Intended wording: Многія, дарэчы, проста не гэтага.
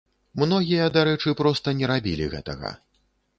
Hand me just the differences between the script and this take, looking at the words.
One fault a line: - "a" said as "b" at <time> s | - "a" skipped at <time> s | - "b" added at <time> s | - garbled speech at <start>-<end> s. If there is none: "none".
- "рабілі" added at 1.9 s